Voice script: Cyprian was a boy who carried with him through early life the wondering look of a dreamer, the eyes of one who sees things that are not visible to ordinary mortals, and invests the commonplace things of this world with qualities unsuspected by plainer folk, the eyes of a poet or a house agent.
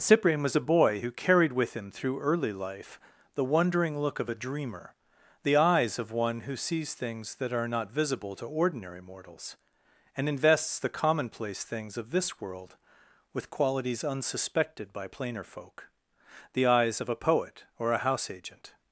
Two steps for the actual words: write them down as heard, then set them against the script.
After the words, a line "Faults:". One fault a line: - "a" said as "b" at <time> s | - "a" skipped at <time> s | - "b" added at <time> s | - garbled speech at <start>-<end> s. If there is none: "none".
Cyprian was a boy who carried with him through early life the wondering look of a dreamer, the eyes of one who sees things that are not visible to ordinary mortals, and invests the commonplace things of this world with qualities unsuspected by plainer folk, the eyes of a poet or a house agent.
Faults:
none